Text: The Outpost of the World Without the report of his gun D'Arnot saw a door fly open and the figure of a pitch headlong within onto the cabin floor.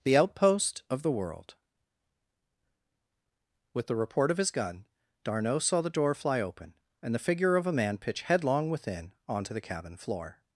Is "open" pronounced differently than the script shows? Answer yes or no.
no